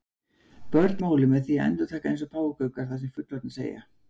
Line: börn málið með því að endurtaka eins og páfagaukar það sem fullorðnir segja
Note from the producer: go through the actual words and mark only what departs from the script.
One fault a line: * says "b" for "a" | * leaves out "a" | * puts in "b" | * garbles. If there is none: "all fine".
all fine